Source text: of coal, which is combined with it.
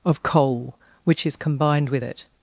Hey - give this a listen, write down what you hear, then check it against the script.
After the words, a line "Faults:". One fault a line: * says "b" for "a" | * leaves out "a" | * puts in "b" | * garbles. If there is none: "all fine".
of coal, which is combined with it.
Faults:
all fine